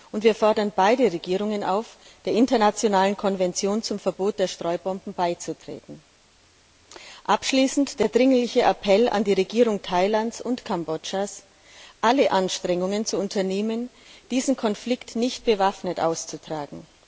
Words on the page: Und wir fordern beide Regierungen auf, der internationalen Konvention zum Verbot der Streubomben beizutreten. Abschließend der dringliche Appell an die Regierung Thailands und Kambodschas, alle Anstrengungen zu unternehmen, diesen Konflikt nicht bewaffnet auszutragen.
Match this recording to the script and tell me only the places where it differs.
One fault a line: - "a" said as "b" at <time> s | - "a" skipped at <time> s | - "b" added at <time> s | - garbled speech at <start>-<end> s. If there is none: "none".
none